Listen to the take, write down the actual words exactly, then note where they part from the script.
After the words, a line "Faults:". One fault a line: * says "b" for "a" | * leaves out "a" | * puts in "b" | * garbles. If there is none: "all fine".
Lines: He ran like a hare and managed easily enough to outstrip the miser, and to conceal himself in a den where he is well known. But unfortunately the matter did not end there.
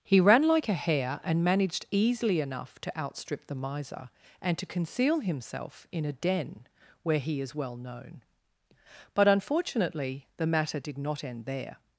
He ran like a hare and managed easily enough to outstrip the miser, and to conceal himself in a den where he is well known. But unfortunately the matter did not end there.
Faults:
all fine